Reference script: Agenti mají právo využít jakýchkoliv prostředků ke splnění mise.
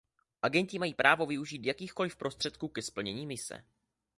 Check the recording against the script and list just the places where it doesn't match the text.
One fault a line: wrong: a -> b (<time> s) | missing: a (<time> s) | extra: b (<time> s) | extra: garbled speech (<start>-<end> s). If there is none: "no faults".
no faults